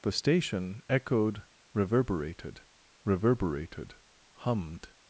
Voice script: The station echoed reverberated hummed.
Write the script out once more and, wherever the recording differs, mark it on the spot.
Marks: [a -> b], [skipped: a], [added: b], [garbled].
The station echoed reverberated [added: reverberated] hummed.